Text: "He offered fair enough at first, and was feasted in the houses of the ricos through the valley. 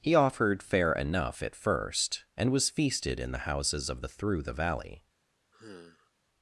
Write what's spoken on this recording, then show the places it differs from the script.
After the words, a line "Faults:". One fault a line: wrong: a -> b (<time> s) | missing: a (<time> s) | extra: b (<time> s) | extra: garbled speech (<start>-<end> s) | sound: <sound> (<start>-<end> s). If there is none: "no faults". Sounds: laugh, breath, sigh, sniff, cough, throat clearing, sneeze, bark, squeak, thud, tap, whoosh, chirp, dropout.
"He offered fair enough at first, and was feasted in the houses of the through the valley.
Faults:
missing: ricos (4.1 s)
sound: sigh (5.5-6.1 s)